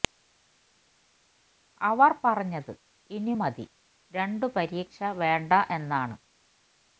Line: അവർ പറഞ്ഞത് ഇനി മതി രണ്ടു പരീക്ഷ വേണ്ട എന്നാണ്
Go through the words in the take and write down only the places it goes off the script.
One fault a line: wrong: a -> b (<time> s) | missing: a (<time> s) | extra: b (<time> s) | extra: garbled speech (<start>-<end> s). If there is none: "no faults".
no faults